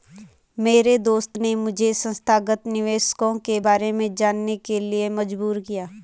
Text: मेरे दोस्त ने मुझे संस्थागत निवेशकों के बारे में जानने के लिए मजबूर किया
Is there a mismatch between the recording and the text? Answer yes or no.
no